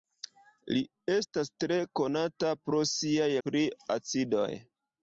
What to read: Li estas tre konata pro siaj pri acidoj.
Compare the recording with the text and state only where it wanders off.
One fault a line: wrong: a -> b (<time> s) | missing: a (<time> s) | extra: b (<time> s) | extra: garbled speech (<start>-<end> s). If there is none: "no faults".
no faults